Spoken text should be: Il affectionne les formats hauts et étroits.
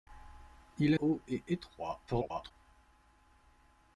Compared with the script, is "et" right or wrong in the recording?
right